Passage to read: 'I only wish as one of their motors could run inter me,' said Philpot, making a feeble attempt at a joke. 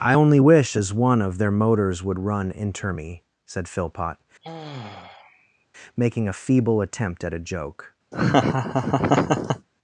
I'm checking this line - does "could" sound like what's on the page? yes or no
no